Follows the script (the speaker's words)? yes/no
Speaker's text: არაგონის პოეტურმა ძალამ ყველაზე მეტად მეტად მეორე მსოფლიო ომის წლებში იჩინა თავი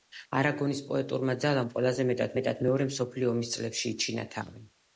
yes